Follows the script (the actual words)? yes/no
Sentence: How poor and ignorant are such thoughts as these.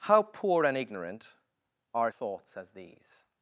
no